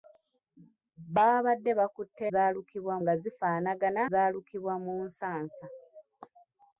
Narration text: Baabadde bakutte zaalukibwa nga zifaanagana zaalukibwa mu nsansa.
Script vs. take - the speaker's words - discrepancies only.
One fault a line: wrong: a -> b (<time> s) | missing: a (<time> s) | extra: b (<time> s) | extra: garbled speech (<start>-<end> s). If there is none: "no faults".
no faults